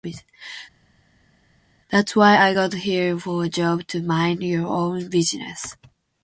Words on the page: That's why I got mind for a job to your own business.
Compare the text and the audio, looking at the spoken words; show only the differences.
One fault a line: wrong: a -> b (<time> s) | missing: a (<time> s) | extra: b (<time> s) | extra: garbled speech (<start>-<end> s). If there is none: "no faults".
wrong: mind -> here (2.7 s)
extra: mind (4.0 s)